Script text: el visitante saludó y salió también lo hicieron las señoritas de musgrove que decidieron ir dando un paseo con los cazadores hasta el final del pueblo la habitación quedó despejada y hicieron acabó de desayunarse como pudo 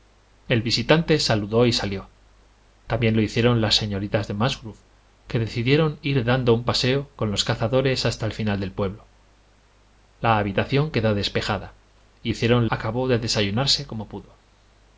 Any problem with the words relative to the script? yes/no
no